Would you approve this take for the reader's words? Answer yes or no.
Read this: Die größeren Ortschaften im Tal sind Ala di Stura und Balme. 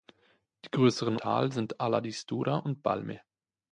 no